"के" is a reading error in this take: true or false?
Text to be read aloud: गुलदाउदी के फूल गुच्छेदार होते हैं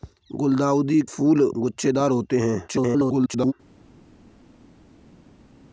true